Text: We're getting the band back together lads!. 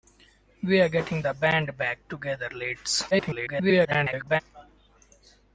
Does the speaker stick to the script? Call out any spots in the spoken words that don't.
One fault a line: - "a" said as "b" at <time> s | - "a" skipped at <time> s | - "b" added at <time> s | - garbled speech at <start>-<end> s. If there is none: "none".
- garbled speech at 3.1-4.4 s